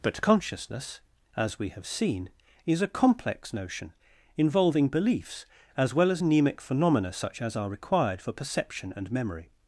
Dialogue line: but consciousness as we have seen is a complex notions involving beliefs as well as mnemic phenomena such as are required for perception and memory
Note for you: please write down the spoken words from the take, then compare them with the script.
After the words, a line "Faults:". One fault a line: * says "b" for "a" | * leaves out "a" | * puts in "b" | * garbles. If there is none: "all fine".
but consciousness as we have seen is a complex notion involving beliefs as well as mnemic phenomena such as are required for perception and memory
Faults:
* says "notion" for "notions"